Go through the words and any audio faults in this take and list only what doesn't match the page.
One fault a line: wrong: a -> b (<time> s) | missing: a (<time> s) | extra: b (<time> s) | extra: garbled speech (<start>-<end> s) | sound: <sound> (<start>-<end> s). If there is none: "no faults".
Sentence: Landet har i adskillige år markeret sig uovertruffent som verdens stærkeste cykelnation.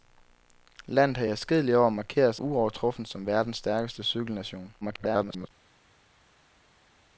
missing: sig (2.4 s)
extra: garbled speech (4.8-5.5 s)